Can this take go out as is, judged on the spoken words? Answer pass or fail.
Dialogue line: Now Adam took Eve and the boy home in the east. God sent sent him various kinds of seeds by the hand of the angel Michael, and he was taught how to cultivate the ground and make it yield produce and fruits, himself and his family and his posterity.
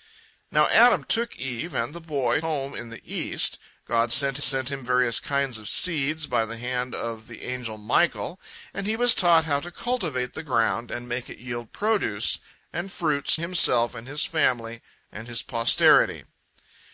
pass